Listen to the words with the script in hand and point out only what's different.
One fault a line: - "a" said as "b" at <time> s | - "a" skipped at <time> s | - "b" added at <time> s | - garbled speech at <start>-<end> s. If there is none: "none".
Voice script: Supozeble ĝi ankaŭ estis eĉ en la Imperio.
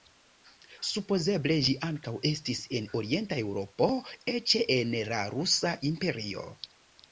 - "en orienta Eŭropo" added at 2.8 s
- "Rusa" added at 5.4 s